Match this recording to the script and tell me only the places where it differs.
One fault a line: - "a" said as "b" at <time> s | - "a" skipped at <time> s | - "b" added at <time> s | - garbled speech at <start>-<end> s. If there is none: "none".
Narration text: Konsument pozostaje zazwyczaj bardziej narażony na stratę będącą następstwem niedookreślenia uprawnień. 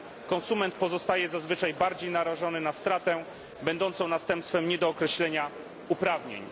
none